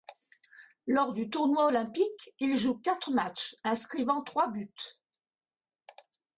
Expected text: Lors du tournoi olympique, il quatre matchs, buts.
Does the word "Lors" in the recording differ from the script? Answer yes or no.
no